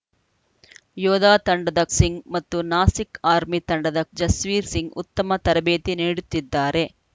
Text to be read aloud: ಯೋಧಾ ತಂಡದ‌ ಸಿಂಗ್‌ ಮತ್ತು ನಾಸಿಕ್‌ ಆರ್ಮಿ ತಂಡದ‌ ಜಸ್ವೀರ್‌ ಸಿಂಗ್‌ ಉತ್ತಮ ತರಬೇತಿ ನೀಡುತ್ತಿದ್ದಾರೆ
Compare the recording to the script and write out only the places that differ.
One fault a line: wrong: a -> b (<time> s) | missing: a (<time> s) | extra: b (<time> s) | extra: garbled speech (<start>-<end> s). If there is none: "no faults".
no faults